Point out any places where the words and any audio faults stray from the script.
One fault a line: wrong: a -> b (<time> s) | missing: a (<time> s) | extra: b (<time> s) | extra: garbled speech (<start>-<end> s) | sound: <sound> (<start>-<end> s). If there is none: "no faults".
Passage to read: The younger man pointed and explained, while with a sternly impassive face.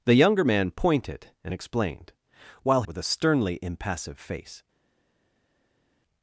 no faults